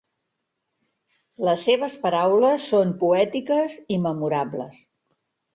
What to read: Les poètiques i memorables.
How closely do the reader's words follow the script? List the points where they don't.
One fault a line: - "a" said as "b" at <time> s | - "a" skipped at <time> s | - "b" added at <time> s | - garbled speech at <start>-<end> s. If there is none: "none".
- "seves paraules són" added at 1.7 s